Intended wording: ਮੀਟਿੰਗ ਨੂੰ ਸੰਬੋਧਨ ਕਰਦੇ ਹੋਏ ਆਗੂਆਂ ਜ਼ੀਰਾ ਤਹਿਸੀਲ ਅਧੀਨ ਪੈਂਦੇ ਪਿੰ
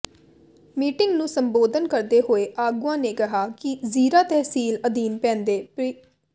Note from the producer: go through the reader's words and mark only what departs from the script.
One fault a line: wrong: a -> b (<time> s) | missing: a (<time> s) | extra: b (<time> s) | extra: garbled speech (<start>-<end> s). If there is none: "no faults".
extra: ਨੇ ਕਿਹਾ ਕਿ (3.0 s)